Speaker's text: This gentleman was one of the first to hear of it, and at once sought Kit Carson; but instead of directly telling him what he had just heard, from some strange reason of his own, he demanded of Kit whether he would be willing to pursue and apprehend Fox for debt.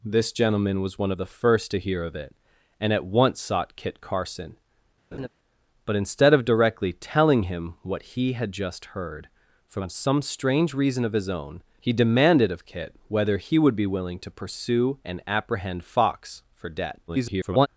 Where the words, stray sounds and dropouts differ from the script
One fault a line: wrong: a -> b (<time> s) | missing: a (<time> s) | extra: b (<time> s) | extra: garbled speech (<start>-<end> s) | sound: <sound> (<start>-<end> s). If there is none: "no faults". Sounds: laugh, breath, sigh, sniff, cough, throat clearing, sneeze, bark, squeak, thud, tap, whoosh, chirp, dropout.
sound: laugh (5.1-5.3 s)
extra: garbled speech (17.1-17.7 s)